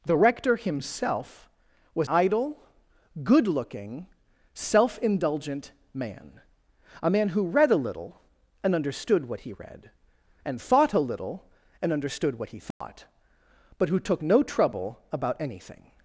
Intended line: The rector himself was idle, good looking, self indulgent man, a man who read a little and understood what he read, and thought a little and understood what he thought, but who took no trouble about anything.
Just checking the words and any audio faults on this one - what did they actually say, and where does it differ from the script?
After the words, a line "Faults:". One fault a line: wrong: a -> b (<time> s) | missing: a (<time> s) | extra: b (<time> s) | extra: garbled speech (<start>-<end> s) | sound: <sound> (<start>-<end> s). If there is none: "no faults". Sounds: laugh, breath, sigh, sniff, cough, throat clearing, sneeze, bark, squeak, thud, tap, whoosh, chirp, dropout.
The rector himself was idle, good looking, self indulgent man, a man who read a little and understood what he read, and thought a little and understood what he thought, but who took no trouble about anything.
Faults:
sound: dropout (12.7-12.8 s)